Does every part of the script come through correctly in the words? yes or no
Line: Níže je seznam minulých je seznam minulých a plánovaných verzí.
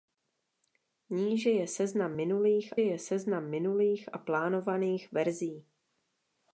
yes